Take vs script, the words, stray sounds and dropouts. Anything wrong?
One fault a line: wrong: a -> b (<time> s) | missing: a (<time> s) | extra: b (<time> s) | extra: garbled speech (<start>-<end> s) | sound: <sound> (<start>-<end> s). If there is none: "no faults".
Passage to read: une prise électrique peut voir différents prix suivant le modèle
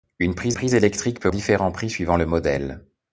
extra: prise (0.5 s)
missing: voir (1.3 s)